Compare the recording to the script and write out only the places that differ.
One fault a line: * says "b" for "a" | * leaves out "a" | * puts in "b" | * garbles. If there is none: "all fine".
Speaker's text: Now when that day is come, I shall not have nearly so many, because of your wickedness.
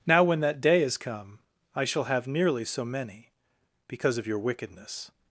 * leaves out "not"